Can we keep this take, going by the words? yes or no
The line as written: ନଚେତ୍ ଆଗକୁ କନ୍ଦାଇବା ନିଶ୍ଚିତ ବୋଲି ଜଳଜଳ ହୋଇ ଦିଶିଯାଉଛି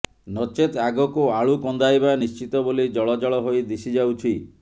no